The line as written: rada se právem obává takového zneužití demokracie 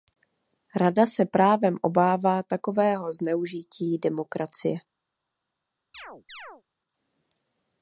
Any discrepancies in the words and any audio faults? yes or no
yes